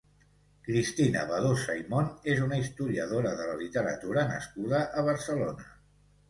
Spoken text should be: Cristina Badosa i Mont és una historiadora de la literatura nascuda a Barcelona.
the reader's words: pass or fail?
pass